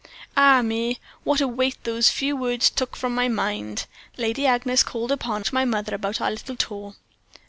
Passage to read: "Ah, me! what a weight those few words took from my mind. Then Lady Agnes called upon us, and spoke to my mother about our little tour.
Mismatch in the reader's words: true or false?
true